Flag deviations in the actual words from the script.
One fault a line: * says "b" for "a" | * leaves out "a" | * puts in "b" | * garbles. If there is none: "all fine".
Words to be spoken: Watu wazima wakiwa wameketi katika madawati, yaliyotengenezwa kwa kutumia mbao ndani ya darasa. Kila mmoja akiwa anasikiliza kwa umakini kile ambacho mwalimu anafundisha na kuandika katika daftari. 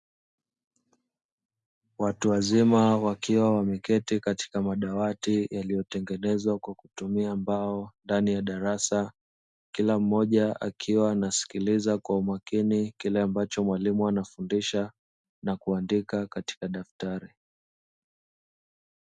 all fine